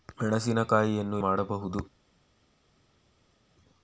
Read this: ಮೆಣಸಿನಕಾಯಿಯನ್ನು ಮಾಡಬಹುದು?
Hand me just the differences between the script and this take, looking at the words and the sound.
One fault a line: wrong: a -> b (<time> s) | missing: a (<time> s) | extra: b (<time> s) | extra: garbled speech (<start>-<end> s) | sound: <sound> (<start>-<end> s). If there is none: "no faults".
no faults